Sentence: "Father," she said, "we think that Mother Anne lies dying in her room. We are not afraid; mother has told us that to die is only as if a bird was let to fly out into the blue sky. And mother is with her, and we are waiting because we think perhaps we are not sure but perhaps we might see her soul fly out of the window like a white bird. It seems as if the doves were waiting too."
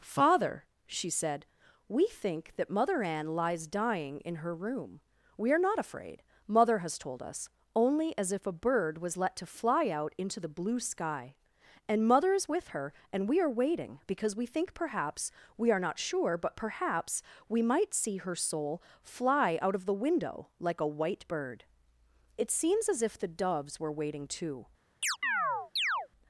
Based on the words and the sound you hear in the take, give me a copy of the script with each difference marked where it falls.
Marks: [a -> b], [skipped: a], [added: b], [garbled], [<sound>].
"Father," she said, "we think that Mother Anne lies dying in her room. We are not afraid; mother has told us [skipped: that to die is] only as if a bird was let to fly out into the blue sky. And mother is with her, and we are waiting because we think perhaps we are not sure but perhaps we might see her soul fly out of the window like a white bird. It seems as if the doves were waiting too." [chirp]